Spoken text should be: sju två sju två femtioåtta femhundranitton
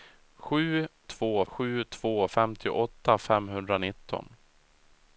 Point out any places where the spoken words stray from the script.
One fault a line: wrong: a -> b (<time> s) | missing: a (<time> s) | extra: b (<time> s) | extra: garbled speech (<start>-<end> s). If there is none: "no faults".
no faults